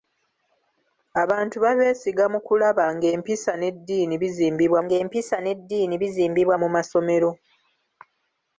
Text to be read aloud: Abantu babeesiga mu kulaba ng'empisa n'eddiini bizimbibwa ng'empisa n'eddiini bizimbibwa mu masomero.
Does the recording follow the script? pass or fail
pass